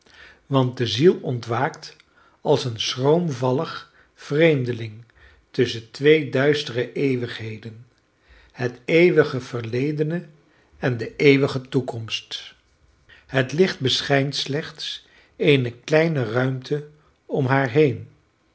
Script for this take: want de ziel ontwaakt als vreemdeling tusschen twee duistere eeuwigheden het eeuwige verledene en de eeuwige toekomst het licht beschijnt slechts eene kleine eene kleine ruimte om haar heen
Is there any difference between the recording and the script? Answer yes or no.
yes